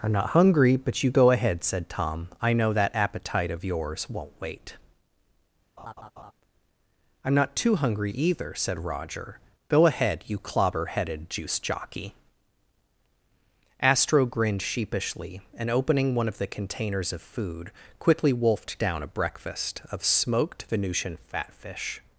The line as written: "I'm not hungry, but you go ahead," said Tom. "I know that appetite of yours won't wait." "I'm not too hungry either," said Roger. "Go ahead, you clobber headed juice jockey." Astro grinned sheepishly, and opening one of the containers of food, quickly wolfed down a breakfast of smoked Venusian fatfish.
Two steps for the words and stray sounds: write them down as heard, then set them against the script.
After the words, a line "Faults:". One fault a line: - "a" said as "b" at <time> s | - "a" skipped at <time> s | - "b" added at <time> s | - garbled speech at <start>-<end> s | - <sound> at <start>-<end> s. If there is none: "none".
"I'm not hungry, but you go ahead," said Tom. "I know that appetite of yours won't wait." "I'm not too hungry either," said Roger. "Go ahead, you clobber headed juice jockey." Astro grinned sheepishly, and opening one of the containers of food, quickly wolfed down a breakfast of smoked Venusian fatfish.
Faults:
- laugh at 5.8-6.3 s